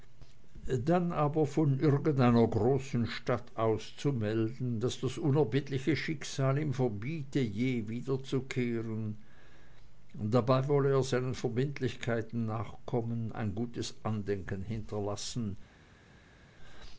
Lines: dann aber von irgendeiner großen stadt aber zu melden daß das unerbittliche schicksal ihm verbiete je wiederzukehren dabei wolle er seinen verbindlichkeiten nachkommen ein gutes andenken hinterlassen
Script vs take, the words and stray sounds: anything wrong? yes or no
yes